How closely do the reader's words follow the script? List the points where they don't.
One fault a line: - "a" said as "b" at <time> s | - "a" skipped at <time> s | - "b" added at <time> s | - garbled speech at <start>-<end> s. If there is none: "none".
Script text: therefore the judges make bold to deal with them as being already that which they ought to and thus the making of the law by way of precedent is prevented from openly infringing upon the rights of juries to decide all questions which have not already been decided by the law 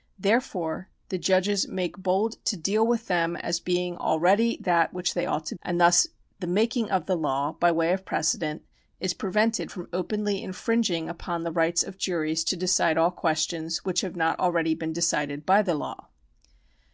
none